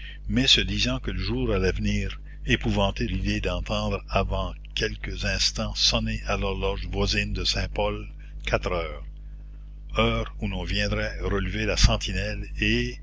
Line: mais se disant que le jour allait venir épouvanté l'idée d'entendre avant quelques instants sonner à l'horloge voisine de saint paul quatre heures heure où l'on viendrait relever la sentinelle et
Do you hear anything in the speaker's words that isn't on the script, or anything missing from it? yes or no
no